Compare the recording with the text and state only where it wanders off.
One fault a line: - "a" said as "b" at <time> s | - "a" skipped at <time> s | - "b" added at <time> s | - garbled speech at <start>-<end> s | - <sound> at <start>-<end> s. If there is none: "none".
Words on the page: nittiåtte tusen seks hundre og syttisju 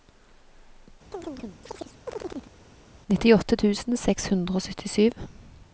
- chirp at 1.1-2.5 s